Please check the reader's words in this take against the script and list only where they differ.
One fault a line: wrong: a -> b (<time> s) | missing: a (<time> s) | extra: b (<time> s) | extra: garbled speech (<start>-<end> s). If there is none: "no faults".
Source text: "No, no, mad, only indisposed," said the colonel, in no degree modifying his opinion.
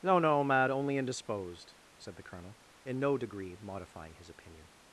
no faults